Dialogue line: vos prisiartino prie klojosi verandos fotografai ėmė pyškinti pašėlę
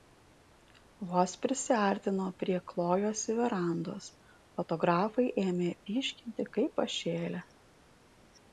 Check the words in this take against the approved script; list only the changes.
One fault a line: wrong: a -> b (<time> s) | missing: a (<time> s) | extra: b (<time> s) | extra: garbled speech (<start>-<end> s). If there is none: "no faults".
extra: kaip (6.6 s)